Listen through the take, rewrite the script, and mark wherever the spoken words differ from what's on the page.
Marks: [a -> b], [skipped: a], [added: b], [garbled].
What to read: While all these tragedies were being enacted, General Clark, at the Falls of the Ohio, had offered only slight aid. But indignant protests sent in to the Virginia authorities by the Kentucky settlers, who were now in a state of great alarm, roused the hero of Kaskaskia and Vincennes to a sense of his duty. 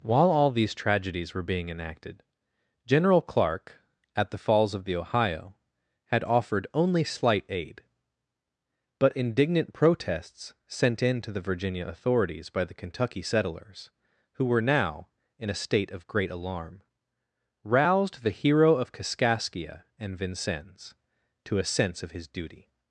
While all these tragedies were being enacted, General Clark, at the Falls of the Ohio, had offered only slight aid. But indignant protests sent in to the Virginia authorities by the Kentucky settlers, who were now in a state of great alarm, roused the hero of Kaskaskia and Vincennes to a sense of his duty.